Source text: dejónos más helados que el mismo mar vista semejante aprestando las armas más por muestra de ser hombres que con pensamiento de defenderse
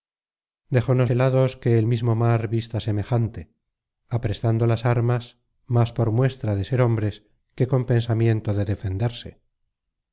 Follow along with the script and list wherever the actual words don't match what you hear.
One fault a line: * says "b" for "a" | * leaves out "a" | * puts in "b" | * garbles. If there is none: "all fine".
* leaves out "más"